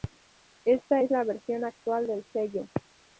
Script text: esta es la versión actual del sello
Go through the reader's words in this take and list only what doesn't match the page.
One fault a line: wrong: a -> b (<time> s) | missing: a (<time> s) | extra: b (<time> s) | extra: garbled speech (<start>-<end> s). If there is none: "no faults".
no faults